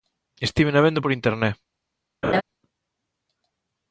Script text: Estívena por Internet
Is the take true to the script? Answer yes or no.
no